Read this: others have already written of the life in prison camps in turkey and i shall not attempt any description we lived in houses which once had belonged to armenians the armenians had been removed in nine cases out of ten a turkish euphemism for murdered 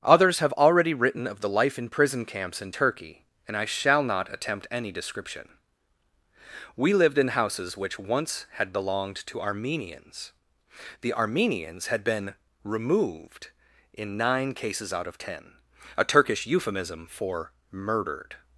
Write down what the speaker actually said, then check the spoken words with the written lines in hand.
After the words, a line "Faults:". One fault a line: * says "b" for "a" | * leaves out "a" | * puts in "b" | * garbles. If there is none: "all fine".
others have already written of the life in prison camps in turkey and i shall not attempt any description we lived in houses which once had belonged to armenians the armenians had been removed in nine cases out of ten a turkish euphemism for murdered
Faults:
all fine